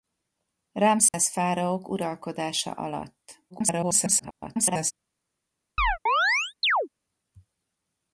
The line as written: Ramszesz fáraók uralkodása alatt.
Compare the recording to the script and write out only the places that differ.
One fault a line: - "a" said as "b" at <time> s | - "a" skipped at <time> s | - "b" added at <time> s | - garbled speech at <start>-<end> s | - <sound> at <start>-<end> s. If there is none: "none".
- dropout at 1.1-1.1 s
- garbled speech at 3.5-4.9 s
- chirp at 5.8-6.9 s